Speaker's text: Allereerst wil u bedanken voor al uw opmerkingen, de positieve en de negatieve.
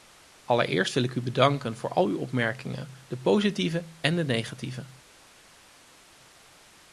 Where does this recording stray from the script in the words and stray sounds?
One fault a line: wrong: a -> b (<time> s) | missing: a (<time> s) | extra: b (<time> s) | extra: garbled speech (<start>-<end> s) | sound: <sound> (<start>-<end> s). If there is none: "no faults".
extra: ik (1.0 s)